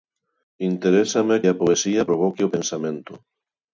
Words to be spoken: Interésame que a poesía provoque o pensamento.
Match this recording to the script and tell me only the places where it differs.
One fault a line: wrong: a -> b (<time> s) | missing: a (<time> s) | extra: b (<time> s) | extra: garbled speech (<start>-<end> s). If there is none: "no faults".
missing: que (1.4 s)